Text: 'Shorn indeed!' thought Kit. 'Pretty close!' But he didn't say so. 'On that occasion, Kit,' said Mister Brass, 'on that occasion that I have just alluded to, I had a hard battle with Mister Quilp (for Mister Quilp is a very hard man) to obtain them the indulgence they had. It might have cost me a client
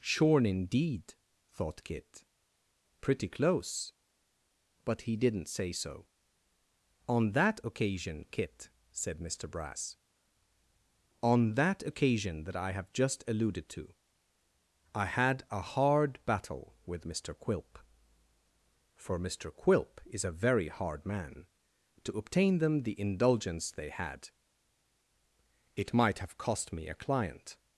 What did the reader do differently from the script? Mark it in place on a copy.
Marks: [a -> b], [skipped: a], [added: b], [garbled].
'Shorn indeed!' thought Kit. 'Pretty close!' But he didn't say so. 'On that occasion, Kit,' said Mister Brass, 'on that occasion that I have just alluded to, I had a hard battle with Mister Quilp (for Mister Quilp is a very hard man) to obtain them the indulgence they had. It might have cost me a client